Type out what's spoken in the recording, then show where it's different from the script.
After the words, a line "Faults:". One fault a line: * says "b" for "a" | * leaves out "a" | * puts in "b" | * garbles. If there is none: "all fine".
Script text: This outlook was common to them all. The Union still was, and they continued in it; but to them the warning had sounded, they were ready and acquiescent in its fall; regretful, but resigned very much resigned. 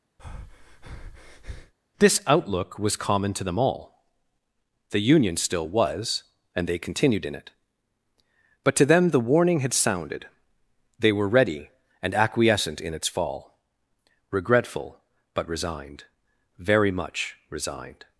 This outlook was common to them all. The Union still was, and they continued in it; but to them the warning had sounded, they were ready and acquiescent in its fall; regretful, but resigned very much resigned.
Faults:
all fine